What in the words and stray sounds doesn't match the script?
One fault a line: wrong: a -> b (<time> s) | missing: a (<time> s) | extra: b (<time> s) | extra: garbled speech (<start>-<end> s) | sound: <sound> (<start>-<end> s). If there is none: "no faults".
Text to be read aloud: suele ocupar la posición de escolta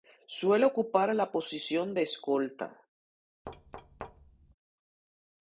sound: thud (3.4-4.5 s)